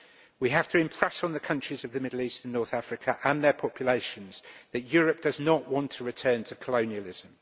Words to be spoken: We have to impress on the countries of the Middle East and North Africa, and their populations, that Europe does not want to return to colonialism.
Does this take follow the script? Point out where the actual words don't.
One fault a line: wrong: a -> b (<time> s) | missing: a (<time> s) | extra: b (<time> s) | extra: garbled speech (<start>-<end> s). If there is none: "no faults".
no faults